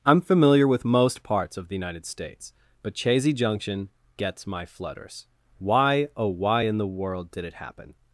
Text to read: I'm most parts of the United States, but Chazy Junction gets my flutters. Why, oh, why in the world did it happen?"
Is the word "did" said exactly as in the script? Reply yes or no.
yes